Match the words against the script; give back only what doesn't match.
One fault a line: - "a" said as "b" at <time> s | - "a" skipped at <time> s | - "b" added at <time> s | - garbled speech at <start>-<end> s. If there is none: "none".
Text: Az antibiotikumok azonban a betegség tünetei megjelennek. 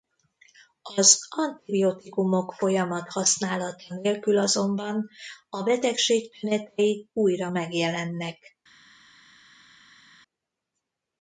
- "folyamat használata nélkül" added at 2.5 s
- "újra" added at 7.1 s